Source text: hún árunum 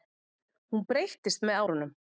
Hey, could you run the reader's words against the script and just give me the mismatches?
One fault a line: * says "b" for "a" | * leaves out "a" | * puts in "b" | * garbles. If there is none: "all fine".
* puts in "breyttist með"